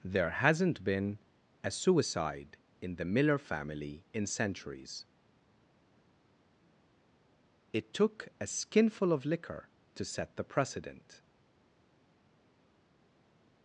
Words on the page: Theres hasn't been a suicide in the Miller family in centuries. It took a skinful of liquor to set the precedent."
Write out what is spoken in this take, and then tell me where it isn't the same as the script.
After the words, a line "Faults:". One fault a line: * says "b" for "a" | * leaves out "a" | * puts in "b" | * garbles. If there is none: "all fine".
There hasn't been a suicide in the Miller family in centuries. It took a skinful of liquor to set the precedent."
Faults:
* says "There" for "Theres"